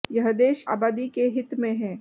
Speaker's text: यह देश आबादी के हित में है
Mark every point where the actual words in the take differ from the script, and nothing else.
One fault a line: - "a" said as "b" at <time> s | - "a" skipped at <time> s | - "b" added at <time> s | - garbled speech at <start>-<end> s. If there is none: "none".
none